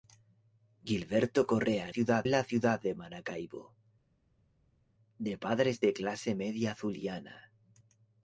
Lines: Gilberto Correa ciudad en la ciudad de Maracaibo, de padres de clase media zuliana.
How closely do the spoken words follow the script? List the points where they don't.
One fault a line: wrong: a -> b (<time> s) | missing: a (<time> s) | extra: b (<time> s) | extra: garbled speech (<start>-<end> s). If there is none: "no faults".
no faults